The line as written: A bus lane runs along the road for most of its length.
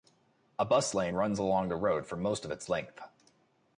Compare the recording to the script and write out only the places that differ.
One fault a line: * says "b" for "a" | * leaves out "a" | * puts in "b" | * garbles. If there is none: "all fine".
all fine